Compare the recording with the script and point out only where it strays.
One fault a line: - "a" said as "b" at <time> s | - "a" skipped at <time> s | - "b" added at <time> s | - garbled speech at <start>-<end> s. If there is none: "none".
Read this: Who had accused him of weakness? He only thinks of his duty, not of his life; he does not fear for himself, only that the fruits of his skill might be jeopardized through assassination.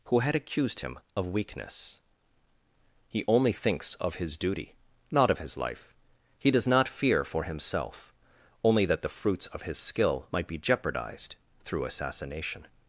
none